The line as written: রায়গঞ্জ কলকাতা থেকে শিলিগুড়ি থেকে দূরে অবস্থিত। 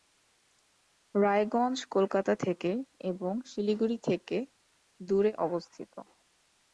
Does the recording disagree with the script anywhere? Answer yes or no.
yes